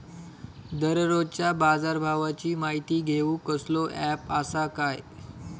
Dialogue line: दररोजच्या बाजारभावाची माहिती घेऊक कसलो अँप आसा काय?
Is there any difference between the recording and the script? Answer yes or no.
no